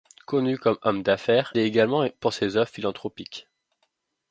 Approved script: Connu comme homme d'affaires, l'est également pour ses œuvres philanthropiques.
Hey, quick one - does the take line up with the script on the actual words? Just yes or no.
yes